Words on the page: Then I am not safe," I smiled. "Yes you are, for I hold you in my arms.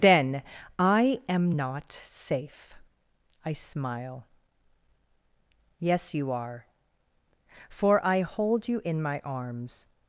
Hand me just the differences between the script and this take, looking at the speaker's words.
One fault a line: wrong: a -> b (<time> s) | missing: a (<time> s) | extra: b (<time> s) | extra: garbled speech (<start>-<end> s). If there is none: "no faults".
wrong: smiled -> smile (3.5 s)